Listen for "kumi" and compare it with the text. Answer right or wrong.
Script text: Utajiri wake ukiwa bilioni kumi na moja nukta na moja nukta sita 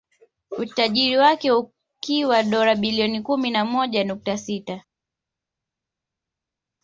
right